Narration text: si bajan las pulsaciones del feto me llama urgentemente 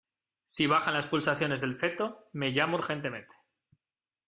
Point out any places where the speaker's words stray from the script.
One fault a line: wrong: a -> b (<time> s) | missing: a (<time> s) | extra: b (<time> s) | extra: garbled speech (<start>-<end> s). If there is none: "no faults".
no faults